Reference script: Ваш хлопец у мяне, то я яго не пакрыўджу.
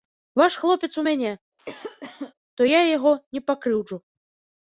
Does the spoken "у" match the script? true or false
true